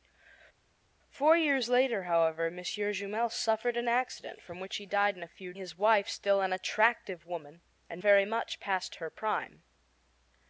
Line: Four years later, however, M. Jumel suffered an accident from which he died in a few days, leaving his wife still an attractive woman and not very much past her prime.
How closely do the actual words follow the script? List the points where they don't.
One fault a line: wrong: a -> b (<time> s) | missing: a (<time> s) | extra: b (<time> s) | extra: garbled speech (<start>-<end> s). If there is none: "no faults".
missing: days leaving (5.5 s)
missing: not (8.0 s)